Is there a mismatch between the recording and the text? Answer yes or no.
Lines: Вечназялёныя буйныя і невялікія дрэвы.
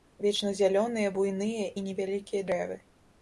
no